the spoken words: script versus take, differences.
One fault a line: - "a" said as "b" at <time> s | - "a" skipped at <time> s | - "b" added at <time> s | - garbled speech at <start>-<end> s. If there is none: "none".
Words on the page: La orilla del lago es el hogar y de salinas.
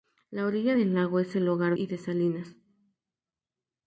none